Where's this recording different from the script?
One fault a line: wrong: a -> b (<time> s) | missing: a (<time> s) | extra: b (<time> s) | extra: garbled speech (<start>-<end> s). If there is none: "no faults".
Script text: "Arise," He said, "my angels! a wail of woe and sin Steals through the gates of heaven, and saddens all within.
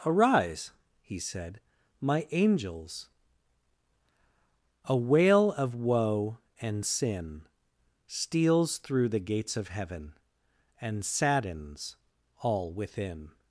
no faults